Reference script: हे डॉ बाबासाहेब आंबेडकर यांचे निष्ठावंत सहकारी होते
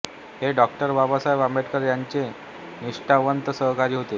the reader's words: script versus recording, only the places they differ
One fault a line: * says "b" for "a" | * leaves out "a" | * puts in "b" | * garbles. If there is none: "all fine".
all fine